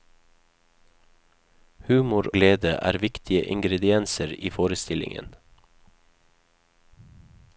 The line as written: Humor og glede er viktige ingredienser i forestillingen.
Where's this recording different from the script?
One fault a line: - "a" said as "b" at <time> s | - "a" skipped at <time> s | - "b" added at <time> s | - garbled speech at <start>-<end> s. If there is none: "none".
- "og" skipped at 2.3 s